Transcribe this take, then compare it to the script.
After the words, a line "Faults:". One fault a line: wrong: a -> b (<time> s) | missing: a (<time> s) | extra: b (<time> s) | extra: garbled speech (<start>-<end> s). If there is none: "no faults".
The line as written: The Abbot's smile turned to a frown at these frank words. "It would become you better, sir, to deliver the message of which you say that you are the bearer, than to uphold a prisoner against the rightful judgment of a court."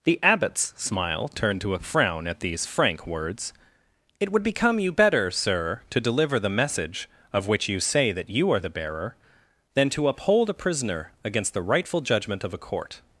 The Abbot's smile turned to a frown at these frank words. "It would become you better, sir, to deliver the message of which you say that you are the bearer, than to uphold a prisoner against the rightful judgment of a court."
Faults:
no faults